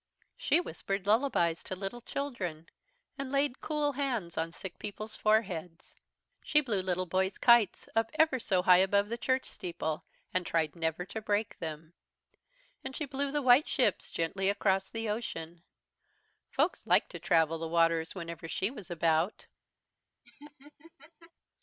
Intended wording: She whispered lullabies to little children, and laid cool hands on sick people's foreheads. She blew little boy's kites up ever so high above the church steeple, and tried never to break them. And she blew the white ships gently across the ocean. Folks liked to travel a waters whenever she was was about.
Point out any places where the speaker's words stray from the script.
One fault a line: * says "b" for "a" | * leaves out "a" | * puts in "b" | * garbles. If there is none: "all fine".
* says "the" for "a"
* leaves out "was"